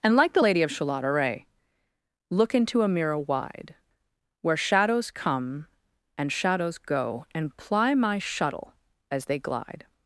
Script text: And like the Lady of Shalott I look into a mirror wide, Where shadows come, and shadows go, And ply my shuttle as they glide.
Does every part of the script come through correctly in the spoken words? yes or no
no